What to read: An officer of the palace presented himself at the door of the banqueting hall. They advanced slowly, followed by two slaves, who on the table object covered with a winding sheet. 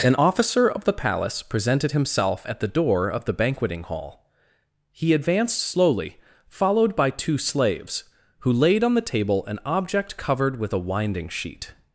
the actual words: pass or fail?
fail